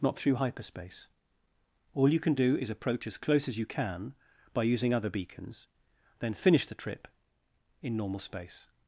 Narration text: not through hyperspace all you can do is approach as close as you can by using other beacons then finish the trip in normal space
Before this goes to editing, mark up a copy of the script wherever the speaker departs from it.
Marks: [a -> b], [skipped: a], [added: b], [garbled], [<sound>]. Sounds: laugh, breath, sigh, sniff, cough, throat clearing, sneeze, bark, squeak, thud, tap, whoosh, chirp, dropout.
not through hyperspace all you can do is approach as close as you can by using other beacons then finish the trip in normal space